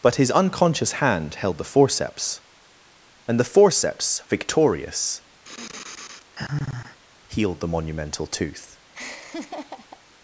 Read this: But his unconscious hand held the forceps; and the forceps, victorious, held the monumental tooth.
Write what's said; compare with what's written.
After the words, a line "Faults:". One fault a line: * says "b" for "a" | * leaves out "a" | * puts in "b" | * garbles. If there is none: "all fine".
But his unconscious hand held the forceps; and the forceps, victorious, healed the monumental tooth.
Faults:
* says "healed" for "held"